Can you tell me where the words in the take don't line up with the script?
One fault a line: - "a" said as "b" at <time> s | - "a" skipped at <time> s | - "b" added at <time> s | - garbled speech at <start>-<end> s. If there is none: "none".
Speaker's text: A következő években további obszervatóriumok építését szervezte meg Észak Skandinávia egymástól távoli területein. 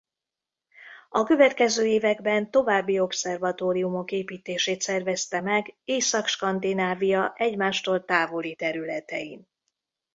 none